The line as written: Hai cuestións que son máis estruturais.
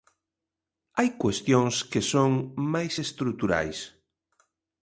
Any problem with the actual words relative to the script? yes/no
no